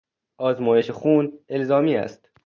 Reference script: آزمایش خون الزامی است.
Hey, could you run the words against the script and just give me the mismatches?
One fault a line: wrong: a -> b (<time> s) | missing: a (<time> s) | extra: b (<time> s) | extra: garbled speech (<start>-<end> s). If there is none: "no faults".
no faults